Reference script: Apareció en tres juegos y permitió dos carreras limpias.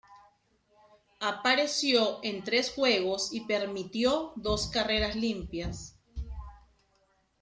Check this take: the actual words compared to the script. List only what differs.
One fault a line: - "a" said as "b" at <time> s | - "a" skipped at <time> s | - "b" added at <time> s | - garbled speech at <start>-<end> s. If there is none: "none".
none